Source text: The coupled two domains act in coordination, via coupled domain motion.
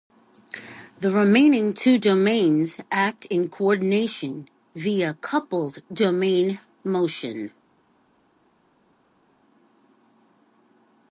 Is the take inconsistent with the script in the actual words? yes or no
yes